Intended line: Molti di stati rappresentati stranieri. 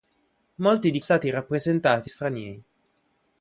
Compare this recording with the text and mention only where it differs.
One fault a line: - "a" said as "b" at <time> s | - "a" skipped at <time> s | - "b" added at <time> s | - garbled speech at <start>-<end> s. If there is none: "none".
none